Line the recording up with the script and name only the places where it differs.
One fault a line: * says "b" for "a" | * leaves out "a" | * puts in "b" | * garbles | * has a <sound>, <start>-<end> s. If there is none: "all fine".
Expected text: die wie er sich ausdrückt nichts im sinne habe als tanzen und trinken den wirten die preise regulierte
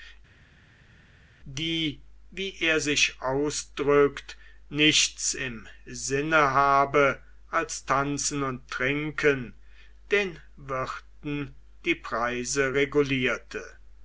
all fine